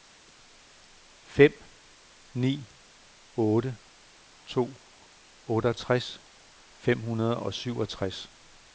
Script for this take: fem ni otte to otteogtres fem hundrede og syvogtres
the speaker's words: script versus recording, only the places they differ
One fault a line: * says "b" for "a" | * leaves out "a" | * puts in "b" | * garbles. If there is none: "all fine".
all fine